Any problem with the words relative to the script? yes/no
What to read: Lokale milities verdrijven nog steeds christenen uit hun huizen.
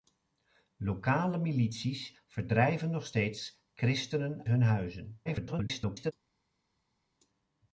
yes